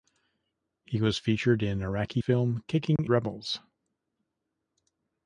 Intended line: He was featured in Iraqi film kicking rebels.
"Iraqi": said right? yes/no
yes